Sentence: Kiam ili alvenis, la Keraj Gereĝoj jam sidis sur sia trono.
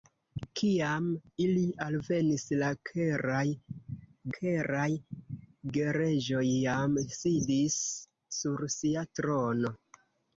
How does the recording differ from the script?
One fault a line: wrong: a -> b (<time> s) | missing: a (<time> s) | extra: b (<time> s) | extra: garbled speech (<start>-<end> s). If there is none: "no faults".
extra: Keraj (4.4 s)